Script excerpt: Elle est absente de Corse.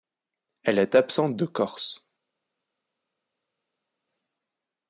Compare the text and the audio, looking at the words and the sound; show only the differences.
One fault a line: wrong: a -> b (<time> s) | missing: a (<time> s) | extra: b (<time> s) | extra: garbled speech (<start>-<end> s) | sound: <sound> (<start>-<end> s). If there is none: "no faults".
no faults